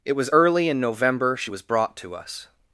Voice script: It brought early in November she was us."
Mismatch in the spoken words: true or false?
true